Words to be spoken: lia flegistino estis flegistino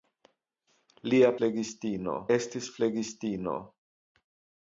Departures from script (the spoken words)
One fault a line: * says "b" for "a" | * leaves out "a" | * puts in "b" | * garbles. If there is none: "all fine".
all fine